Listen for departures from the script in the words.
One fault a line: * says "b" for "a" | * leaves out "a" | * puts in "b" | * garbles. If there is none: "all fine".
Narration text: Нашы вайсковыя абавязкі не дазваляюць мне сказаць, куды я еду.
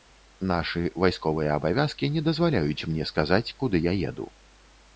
all fine